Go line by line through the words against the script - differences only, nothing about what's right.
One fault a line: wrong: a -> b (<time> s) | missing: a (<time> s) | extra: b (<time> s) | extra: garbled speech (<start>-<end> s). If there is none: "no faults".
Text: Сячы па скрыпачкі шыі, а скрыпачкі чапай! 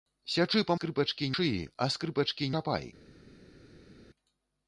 no faults